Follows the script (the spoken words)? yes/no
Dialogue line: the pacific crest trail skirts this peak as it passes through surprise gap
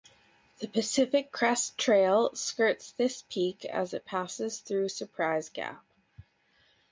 yes